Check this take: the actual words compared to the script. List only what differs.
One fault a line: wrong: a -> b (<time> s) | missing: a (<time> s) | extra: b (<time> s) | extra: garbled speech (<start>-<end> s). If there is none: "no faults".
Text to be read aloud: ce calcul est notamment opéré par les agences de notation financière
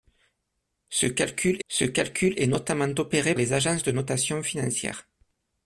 extra: ce calcul (1.7 s)
missing: par (3.3 s)